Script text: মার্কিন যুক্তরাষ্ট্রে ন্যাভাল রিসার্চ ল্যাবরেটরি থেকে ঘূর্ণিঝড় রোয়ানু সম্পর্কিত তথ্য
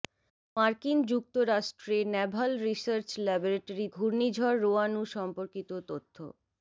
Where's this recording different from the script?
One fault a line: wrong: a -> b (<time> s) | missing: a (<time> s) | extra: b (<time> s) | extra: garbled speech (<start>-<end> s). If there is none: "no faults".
missing: থেকে (3.9 s)